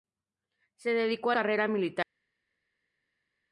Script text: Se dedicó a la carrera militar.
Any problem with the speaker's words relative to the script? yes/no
yes